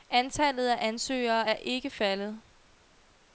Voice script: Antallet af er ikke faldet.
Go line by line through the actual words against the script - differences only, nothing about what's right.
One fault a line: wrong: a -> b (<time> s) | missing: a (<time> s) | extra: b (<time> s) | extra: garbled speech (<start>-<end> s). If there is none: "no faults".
extra: ansøgere (0.9 s)